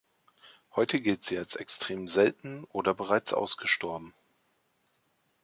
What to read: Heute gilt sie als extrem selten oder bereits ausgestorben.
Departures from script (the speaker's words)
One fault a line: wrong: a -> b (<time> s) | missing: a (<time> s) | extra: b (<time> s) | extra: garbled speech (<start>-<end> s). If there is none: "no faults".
no faults